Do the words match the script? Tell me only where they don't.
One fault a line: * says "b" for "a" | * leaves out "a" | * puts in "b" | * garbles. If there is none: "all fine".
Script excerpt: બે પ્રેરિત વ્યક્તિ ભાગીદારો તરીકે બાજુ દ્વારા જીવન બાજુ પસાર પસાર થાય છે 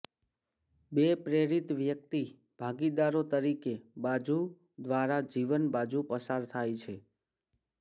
* leaves out "પસાર"